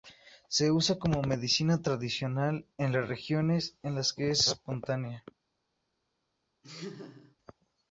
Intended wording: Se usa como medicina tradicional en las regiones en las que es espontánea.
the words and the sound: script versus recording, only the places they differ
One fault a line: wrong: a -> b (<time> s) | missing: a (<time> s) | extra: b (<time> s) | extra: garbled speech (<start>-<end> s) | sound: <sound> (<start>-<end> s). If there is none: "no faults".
sound: laugh (6.6-7.4 s)